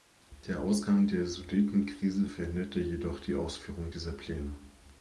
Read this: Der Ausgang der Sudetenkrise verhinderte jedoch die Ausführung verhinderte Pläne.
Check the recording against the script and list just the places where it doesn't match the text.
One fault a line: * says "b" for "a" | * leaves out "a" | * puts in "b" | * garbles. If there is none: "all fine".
* says "dieser" for "verhinderte"